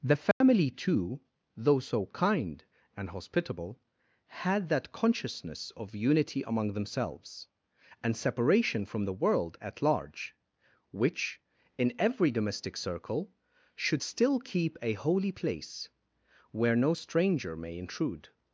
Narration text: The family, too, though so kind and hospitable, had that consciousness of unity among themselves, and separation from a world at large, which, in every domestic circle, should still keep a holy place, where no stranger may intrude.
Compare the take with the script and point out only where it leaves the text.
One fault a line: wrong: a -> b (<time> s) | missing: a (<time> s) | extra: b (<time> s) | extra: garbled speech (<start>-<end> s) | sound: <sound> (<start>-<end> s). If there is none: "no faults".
sound: dropout (0.3-0.4 s)
wrong: a -> the (9.1 s)